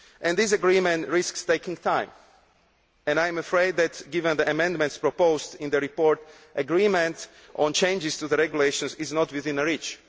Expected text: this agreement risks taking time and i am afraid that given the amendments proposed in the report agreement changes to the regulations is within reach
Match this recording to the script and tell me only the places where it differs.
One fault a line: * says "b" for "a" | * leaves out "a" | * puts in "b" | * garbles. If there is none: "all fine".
* puts in "on"
* puts in "not"